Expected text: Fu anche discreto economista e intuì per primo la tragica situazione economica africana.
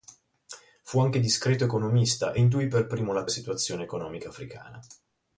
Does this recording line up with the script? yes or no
no